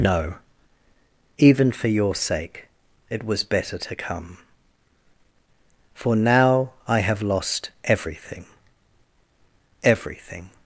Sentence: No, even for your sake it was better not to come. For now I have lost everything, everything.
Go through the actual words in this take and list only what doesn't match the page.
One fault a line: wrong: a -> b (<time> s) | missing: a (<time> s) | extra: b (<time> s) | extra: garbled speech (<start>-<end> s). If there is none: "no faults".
missing: not (3.8 s)